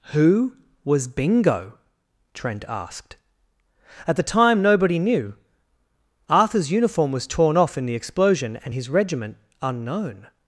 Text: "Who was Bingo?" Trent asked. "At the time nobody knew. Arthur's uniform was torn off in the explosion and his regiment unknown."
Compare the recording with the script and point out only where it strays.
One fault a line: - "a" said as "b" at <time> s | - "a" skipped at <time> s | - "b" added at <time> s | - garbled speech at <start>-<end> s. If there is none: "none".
none